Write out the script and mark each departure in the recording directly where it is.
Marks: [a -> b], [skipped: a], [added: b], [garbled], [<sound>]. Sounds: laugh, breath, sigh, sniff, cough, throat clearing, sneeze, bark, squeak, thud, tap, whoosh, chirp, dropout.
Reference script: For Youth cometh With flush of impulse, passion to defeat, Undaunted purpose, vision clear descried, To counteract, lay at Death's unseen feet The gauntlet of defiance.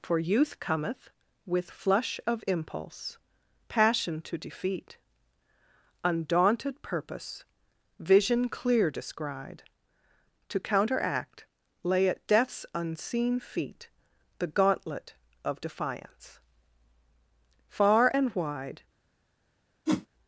For Youth cometh With flush of impulse, passion to defeat, Undaunted purpose, vision clear descried, To counteract, lay at Death's unseen feet The gauntlet of defiance. [added: Far and wide] [whoosh]